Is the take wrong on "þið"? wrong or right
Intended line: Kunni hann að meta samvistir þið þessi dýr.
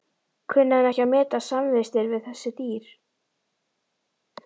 wrong